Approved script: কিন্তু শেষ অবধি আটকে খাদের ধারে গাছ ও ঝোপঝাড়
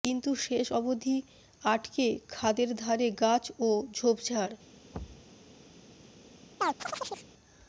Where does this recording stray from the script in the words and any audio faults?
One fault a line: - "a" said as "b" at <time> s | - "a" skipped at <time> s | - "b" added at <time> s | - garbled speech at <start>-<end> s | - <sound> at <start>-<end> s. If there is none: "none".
- thud at 4.9-5.3 s
- chirp at 6.6-7.3 s